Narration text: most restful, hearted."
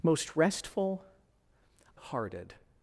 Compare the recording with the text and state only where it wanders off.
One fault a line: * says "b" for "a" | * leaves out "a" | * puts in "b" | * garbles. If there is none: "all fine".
all fine